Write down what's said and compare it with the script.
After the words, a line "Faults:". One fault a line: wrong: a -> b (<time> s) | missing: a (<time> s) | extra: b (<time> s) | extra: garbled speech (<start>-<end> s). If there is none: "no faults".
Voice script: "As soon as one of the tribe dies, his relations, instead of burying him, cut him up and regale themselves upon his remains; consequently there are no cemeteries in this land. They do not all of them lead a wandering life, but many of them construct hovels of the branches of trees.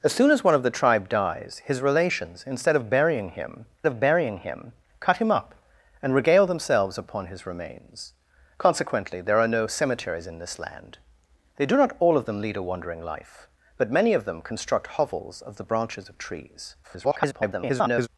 "As soon as one of the tribe dies, his relations, instead of burying him of burying him, cut him up and regale themselves upon his remains; consequently there are no cemeteries in this land. They do not all of them lead a wandering life, but many of them construct hovels of the branches of trees. [garbled]
Faults:
extra: of burying him (3.9 s)
extra: garbled speech (16.8-18.1 s)